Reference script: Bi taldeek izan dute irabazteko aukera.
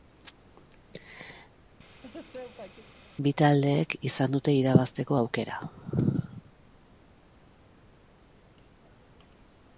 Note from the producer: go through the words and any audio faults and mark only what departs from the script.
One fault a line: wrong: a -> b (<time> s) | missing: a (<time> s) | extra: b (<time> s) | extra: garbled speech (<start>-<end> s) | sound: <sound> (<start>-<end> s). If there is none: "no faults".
sound: laugh (1.9-2.9 s)